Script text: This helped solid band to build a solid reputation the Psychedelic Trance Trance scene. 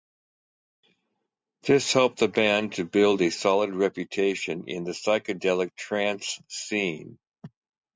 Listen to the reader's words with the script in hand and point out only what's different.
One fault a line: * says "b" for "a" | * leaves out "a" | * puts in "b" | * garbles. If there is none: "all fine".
* says "the" for "solid"
* puts in "in"
* leaves out "Trance"